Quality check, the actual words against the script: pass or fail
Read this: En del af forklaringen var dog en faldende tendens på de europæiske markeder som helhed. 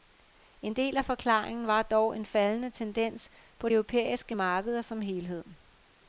fail